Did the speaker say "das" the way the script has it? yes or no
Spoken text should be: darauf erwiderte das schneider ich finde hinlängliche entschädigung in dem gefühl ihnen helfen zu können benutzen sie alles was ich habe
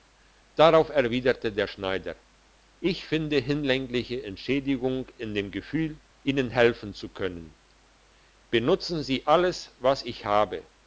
no